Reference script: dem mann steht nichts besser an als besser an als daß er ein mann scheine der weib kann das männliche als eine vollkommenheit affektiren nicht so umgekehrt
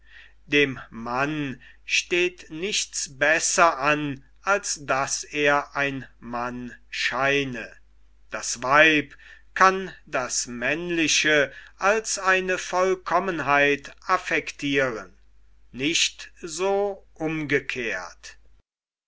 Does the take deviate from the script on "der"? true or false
true